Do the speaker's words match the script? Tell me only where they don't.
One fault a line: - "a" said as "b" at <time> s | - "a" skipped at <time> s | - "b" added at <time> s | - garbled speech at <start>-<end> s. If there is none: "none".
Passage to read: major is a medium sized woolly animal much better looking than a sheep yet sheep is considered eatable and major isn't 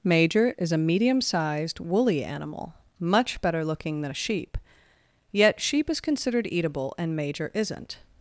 none